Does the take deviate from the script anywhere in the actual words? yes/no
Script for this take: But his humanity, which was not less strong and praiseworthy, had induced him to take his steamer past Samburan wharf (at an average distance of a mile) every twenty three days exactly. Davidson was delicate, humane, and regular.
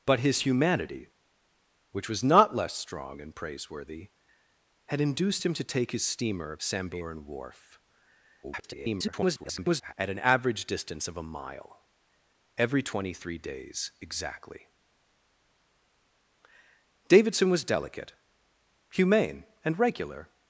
yes